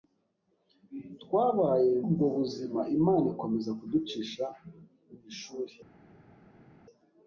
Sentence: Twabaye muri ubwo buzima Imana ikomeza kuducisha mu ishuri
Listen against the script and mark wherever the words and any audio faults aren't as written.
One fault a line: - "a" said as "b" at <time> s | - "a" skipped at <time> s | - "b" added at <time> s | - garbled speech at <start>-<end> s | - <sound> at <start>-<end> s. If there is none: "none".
- "muri" skipped at 1.9 s